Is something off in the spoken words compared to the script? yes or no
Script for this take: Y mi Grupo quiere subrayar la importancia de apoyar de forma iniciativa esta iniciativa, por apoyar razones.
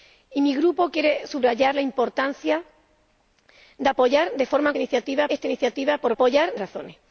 no